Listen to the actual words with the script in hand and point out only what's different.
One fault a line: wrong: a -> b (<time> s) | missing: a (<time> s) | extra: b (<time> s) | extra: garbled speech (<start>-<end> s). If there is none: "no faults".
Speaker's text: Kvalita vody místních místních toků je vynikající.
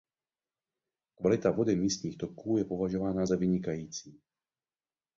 missing: místních (2.2 s)
extra: považována za (2.6 s)